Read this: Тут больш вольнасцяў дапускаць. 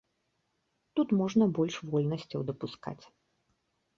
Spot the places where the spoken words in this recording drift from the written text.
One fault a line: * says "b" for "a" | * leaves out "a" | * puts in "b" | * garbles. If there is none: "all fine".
* puts in "можна"